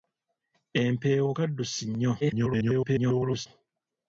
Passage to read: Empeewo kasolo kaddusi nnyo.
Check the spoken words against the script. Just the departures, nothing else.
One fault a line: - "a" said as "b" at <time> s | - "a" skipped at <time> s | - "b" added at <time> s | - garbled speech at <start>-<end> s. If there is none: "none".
- "kasolo" skipped at 1.3 s
- garbled speech at 2.2-3.5 s